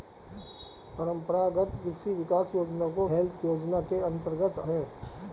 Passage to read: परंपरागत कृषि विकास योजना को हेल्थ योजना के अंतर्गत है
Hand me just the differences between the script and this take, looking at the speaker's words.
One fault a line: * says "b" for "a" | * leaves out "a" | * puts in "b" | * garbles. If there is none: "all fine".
all fine